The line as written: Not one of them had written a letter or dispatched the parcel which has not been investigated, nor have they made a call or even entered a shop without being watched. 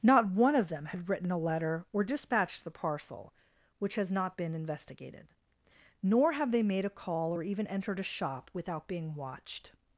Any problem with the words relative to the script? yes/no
no